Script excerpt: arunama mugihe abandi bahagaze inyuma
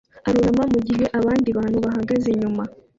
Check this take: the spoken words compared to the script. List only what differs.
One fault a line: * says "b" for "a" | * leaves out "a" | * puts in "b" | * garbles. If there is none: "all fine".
* puts in "bantu"